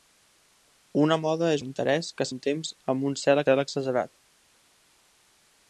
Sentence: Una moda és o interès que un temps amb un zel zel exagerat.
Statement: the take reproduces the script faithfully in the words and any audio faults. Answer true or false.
true